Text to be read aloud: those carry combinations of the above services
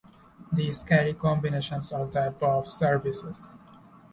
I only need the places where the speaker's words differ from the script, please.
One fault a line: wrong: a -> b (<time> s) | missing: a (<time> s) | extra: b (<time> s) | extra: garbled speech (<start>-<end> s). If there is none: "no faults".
wrong: those -> these (0.5 s)